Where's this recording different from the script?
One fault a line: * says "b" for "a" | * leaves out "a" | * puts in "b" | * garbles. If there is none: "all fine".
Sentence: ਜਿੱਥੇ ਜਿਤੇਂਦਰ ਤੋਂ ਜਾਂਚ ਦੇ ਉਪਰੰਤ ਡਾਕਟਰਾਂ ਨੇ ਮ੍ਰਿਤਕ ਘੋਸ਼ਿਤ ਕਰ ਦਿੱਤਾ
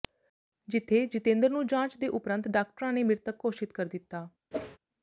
* says "ਨੂੰ" for "ਤੋਂ"